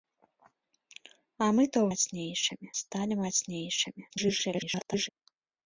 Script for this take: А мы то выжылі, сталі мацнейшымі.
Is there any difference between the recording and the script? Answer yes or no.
yes